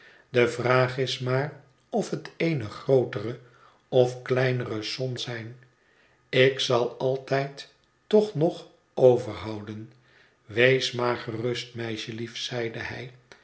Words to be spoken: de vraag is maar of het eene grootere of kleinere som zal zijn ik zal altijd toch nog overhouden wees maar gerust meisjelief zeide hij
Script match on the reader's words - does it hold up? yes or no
no